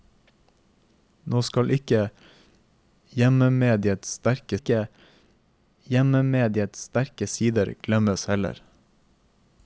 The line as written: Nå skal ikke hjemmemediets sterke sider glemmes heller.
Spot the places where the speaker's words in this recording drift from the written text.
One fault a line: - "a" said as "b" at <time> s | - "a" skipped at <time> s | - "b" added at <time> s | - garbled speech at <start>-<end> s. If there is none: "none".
- "ikke hjemmemediets sterke" added at 4.5 s